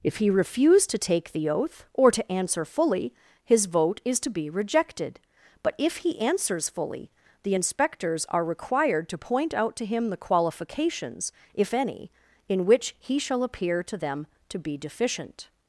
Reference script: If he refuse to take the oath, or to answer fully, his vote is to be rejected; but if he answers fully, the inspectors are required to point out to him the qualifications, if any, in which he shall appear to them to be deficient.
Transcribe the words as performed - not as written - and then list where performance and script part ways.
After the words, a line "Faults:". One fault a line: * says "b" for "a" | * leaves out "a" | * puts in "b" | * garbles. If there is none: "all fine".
If he refuse to take the oath, or to answer fully, his vote is to be rejected; but if he answers fully, the inspectors are required to point out to him the qualifications, if any, in which he shall appear to them to be deficient.
Faults:
all fine